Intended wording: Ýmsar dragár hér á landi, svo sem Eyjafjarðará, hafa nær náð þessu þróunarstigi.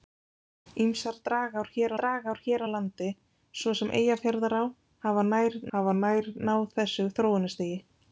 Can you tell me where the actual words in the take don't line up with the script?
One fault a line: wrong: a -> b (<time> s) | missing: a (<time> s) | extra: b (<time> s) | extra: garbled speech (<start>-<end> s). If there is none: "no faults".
extra: dragár hér (2.0 s)
extra: hafa nær (5.8 s)